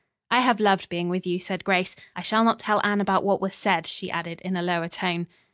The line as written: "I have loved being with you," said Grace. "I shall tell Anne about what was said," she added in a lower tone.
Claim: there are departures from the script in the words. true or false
true